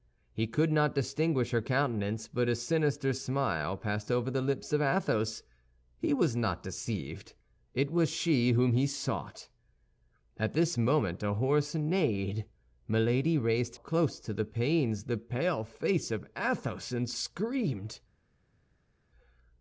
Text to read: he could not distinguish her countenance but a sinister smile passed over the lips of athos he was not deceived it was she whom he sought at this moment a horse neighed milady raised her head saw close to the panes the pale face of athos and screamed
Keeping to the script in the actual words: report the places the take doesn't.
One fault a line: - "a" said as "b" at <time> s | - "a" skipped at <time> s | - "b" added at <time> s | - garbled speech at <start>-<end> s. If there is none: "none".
- "her head saw" skipped at 13.8 s